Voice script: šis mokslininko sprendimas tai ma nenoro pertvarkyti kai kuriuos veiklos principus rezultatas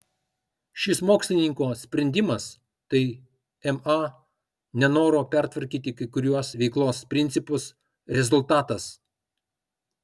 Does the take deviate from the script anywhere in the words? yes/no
no